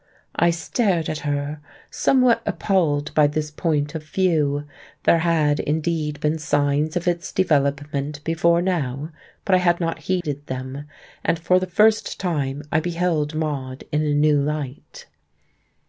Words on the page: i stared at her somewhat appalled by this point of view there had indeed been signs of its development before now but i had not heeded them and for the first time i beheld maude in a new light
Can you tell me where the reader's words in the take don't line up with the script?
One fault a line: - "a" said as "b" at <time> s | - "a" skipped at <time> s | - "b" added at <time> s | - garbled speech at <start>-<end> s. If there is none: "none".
none